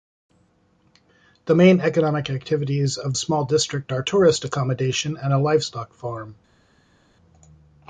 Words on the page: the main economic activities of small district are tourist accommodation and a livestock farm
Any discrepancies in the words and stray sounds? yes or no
no